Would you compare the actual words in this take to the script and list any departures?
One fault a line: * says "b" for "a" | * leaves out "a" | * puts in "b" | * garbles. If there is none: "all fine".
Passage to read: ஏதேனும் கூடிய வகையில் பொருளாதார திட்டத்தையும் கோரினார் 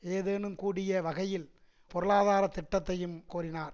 all fine